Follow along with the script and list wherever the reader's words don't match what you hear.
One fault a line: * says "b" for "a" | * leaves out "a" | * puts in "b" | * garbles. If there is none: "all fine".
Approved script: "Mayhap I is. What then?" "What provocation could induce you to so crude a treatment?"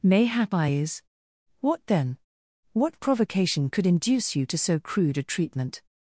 all fine